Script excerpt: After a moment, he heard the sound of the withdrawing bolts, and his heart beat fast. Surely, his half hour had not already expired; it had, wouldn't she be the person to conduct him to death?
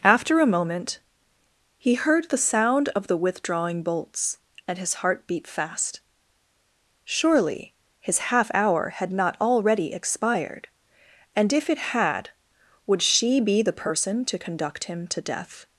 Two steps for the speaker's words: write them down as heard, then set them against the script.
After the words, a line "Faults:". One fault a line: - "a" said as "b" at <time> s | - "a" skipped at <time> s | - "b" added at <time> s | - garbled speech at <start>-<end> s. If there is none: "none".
After a moment, he heard the sound of the withdrawing bolts, and his heart beat fast. Surely, his half hour had not already expired; and if it had, would she be the person to conduct him to death?
Faults:
- "and if" added at 11.3 s
- "wouldn't" said as "would" at 12.9 s